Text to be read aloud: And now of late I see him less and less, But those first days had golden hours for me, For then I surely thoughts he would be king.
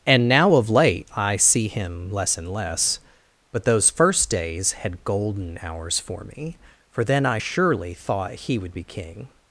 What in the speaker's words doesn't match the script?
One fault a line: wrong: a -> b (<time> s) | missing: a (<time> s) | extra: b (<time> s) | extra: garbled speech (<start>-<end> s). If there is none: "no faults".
wrong: thoughts -> thought (7.9 s)